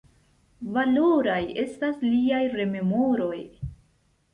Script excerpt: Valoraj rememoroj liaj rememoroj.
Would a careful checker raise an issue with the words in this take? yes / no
yes